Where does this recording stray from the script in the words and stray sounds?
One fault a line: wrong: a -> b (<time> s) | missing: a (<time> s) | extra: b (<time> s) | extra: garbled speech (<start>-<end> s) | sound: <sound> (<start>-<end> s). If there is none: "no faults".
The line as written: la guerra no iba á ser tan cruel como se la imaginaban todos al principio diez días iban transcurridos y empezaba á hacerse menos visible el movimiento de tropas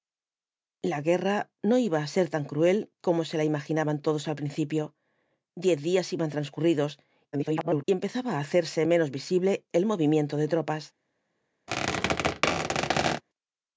extra: garbled speech (7.3-7.8 s)
sound: squeak (11.7-13.2 s)